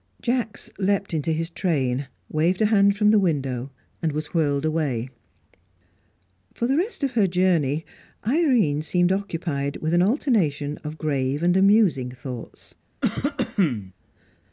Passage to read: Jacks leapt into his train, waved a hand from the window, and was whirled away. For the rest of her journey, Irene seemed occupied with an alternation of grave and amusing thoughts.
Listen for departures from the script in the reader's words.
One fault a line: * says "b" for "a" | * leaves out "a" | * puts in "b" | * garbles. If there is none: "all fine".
all fine